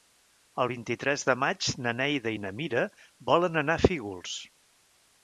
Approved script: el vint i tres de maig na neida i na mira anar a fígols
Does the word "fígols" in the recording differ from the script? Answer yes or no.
no